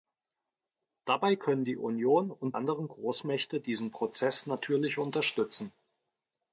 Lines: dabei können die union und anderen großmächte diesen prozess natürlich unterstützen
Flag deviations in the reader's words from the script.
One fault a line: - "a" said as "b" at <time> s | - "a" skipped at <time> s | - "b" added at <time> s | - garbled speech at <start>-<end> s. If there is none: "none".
none